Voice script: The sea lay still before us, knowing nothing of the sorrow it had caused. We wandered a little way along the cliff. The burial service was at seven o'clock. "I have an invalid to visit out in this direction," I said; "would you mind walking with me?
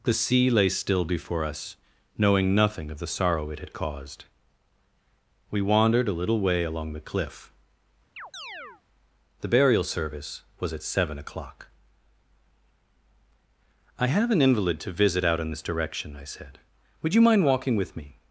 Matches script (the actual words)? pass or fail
pass